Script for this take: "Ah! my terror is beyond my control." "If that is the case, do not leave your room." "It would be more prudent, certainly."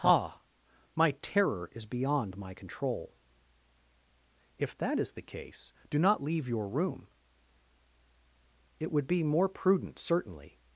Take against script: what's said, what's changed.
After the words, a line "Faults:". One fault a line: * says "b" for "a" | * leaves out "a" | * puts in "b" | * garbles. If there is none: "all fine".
"Ah! my terror is beyond my control." "If that is the case, do not leave your room." "It would be more prudent, certainly."
Faults:
all fine